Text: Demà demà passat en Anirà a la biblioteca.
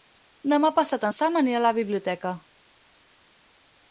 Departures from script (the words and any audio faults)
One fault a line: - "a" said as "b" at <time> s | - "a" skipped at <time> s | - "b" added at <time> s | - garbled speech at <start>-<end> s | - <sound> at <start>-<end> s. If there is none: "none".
- "demà" skipped at 0.7 s
- "Sam" added at 1.2 s